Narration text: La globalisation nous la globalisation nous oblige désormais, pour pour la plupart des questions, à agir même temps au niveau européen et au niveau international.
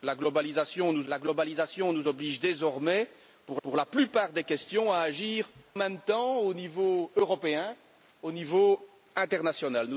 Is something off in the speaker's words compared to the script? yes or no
no